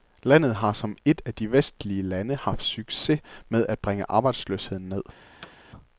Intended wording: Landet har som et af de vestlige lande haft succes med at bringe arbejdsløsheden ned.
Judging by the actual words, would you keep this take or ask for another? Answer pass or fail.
pass